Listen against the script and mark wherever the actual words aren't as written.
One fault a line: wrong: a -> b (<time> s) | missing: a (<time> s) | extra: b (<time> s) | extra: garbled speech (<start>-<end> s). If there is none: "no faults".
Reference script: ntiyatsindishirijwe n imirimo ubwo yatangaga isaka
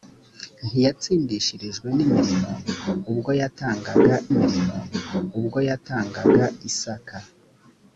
extra: imirimo ubwo yatangaga (4.3 s)